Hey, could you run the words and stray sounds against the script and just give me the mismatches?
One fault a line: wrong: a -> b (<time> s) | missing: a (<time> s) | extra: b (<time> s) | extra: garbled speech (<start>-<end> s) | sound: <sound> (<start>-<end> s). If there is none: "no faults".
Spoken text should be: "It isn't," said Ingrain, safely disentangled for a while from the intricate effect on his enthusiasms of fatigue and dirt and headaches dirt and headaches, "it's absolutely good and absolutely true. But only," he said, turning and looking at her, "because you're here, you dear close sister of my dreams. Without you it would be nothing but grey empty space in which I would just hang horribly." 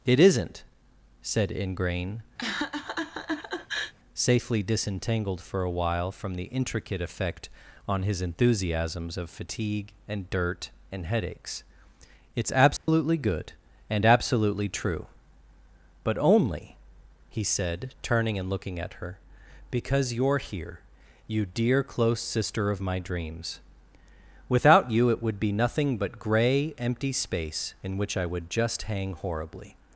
sound: laugh (2.4-3.9 s)
missing: dirt and headaches (11.6 s)
sound: dropout (12.8-12.9 s)